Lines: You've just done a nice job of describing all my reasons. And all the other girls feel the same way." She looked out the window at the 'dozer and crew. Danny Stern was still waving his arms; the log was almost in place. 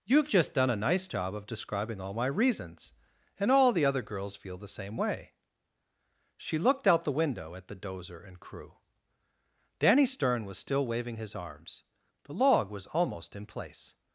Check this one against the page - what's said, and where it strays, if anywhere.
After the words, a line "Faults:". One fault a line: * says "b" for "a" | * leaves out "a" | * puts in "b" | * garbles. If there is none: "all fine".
You've just done a nice job of describing all my reasons. And all the other girls feel the same way." She looked out the window at the 'dozer and crew. Danny Stern was still waving his arms; the log was almost in place.
Faults:
all fine